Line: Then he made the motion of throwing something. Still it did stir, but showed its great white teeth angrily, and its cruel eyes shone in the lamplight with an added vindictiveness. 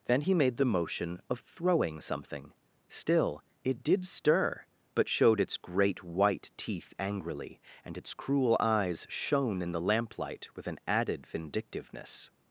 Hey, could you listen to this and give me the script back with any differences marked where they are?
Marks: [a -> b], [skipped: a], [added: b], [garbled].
Then he made the motion of throwing something. Still it did stir, but showed its great white teeth angrily, and its cruel eyes shone in the lamplight with an added vindictiveness.